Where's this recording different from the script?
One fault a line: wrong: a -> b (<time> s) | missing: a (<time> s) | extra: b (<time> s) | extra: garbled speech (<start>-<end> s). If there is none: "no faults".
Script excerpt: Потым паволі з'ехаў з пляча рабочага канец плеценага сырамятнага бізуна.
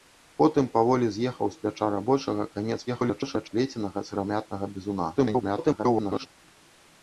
extra: garbled speech (2.9-3.5 s)
extra: garbled speech (5.2-6.3 s)